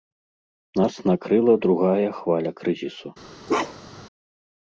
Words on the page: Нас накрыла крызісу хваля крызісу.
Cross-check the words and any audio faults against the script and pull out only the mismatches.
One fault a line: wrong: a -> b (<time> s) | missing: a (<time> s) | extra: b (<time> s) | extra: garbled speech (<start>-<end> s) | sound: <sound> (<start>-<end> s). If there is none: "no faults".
wrong: крызісу -> другая (1.6 s)
sound: bark (3.5-4.1 s)